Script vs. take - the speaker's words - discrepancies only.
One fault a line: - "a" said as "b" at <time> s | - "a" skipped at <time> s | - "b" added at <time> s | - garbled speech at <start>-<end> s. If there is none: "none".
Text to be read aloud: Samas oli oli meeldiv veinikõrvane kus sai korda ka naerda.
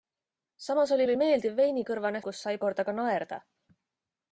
none